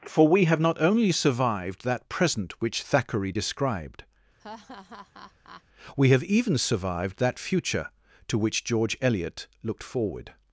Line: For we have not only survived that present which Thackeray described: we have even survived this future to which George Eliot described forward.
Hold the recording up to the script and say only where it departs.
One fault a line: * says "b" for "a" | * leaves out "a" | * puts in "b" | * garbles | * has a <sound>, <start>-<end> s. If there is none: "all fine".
* has a laugh, 4.4-5.6 s
* says "that" for "this"
* says "looked" for "described"